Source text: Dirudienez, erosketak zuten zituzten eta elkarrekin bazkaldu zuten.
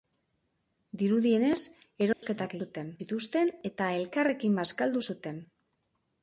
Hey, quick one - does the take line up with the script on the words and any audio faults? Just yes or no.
no